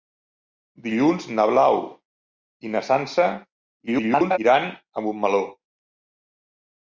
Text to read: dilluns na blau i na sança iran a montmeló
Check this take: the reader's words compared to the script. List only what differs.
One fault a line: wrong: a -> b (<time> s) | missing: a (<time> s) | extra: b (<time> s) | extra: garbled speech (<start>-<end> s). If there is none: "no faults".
extra: garbled speech (3.9-4.4 s)